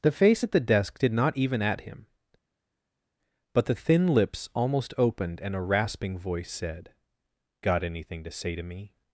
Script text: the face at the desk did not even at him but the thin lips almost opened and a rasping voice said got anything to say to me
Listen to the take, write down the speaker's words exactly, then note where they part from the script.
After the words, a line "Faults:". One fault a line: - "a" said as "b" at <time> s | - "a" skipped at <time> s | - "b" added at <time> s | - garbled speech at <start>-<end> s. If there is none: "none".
the face at the desk did not even at him but the thin lips almost opened and a rasping voice said got anything to say to me
Faults:
none